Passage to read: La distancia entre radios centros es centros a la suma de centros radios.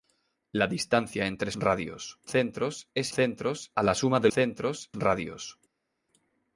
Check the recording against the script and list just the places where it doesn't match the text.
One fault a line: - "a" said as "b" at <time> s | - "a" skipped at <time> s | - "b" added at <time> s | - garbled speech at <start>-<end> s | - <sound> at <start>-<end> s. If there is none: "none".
none